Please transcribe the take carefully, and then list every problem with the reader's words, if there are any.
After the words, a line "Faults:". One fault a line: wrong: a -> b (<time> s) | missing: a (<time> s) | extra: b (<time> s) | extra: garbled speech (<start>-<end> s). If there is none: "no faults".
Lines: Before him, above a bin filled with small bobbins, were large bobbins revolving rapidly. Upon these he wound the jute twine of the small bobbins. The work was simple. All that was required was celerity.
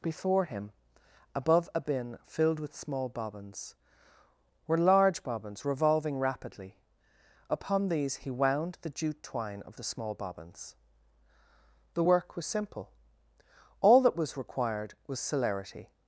Before him, above a bin filled with small bobbins, were large bobbins revolving rapidly. Upon these he wound the jute twine of the small bobbins. The work was simple. All that was required was celerity.
Faults:
no faults